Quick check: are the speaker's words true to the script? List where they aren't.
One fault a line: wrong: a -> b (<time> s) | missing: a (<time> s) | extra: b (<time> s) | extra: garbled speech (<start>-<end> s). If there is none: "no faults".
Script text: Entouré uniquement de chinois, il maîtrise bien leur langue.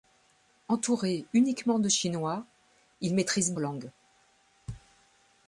missing: bien leur (3.5 s)